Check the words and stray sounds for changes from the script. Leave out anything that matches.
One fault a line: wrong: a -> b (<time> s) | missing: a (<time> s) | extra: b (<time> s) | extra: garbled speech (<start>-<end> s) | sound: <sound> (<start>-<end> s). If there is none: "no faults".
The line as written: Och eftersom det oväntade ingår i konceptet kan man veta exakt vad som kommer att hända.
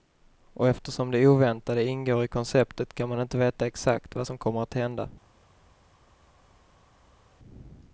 extra: inte (3.2 s)